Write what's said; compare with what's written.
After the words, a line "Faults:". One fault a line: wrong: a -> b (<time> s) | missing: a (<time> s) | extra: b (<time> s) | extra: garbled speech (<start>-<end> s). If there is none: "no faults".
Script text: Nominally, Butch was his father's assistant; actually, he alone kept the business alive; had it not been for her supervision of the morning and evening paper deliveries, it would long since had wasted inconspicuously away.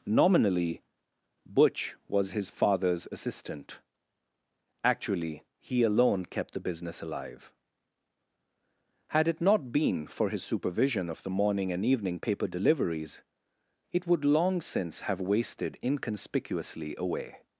Nominally, Butch was his father's assistant; actually, he alone kept the business alive; had it not been for his supervision of the morning and evening paper deliveries, it would long since have wasted inconspicuously away.
Faults:
wrong: her -> his (10.3 s)
wrong: had -> have (15.0 s)